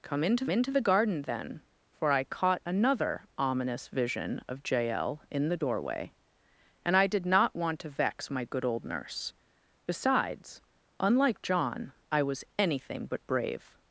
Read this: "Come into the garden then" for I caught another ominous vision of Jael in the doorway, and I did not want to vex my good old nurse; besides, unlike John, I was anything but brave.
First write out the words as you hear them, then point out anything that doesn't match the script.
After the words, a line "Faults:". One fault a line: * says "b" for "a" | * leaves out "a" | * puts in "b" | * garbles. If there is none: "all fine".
"Come into into the garden then" for I caught another ominous vision of Jael in the doorway, and I did not want to vex my good old nurse; besides, unlike John, I was anything but brave.
Faults:
* puts in "into"